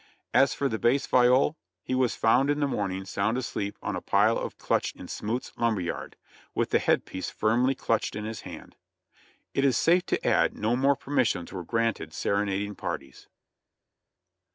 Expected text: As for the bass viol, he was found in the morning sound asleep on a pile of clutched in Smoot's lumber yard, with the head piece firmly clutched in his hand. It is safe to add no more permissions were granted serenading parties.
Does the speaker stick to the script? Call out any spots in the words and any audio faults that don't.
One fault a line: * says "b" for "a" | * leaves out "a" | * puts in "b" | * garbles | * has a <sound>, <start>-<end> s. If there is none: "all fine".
all fine